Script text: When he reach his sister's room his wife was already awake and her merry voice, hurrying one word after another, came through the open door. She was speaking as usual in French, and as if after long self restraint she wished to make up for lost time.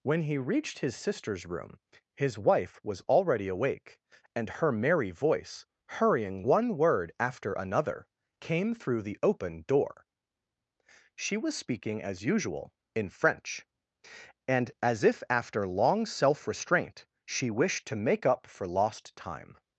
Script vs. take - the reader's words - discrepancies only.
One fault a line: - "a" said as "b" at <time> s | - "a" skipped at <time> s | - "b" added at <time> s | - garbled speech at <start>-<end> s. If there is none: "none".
- "reach" said as "reached" at 0.4 s